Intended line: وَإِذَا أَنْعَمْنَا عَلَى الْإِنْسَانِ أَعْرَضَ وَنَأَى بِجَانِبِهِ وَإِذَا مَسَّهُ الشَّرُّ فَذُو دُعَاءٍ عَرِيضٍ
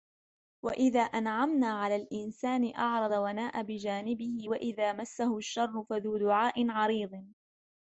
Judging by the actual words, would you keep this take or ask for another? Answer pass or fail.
pass